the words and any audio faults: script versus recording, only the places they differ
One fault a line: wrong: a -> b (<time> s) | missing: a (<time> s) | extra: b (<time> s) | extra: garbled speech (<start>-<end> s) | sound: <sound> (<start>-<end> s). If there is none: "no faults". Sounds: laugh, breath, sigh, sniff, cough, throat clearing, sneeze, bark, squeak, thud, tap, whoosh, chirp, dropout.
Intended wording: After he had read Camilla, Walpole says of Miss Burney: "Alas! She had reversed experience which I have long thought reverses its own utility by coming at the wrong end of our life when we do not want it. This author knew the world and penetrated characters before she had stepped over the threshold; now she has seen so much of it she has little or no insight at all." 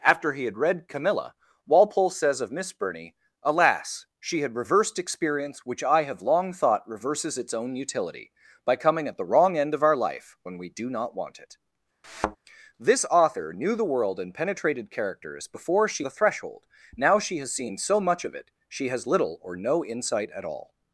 sound: thud (12.0-12.4 s)
missing: had stepped over (16.1 s)